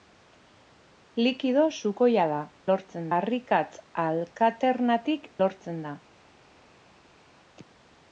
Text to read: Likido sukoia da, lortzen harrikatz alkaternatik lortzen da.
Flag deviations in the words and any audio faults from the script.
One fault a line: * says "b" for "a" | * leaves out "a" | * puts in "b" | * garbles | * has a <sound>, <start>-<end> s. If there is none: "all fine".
all fine